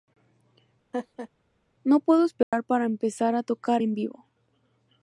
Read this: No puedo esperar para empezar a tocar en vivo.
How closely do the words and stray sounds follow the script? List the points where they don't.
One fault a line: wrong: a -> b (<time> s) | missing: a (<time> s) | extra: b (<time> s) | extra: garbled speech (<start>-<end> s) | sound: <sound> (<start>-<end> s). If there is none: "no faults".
sound: laugh (0.9-1.3 s)
sound: dropout (2.4-2.5 s)